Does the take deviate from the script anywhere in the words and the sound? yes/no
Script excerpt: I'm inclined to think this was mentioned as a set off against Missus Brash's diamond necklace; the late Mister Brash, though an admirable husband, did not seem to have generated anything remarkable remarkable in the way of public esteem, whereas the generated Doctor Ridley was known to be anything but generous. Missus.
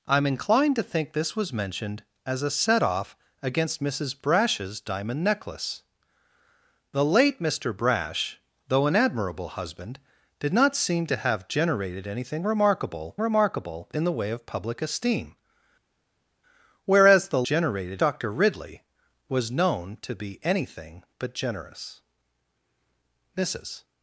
no